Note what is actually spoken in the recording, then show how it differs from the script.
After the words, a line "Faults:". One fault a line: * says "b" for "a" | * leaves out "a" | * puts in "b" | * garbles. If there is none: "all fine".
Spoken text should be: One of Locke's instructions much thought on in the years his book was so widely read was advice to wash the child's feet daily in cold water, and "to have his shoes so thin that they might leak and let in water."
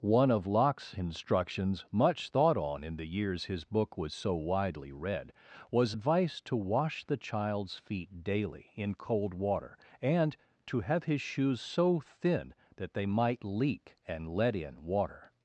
One of Locke's instructions much thought on in the years his book was so widely read was advice to wash the child's feet daily in cold water, and "to have his shoes so thin that they might leak and let in water."
Faults:
all fine